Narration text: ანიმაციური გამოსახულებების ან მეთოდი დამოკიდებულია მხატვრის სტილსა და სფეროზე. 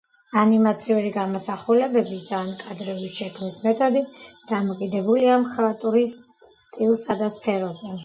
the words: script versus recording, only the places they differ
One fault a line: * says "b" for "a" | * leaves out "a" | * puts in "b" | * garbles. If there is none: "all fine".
* puts in "კადრების შექმნის"